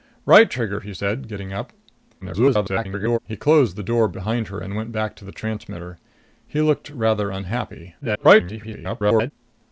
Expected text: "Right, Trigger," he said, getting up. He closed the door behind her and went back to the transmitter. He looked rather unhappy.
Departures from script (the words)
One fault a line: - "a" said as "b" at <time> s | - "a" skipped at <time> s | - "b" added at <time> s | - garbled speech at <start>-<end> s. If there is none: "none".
- garbled speech at 2.2-3.2 s
- garbled speech at 8.0-9.3 s